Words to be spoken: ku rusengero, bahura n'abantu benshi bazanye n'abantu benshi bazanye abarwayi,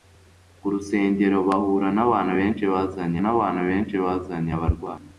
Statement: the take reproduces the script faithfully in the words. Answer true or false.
true